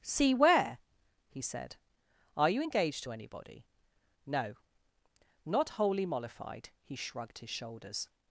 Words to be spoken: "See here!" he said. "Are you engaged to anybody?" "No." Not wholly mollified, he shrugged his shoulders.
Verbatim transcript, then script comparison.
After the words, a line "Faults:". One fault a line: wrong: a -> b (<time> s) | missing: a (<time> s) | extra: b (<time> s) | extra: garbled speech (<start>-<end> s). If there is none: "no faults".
"See where!" he said. "Are you engaged to anybody?" "No." Not wholly mollified, he shrugged his shoulders.
Faults:
wrong: here -> where (0.3 s)